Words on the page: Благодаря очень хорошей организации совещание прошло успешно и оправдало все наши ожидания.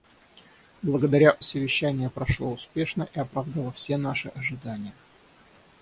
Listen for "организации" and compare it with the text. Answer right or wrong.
wrong